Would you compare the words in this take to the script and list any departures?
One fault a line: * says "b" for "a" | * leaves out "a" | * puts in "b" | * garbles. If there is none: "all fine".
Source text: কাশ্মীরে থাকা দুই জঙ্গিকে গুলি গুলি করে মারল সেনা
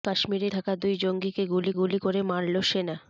all fine